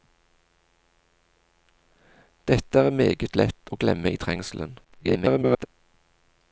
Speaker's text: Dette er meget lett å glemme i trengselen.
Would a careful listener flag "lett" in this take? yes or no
no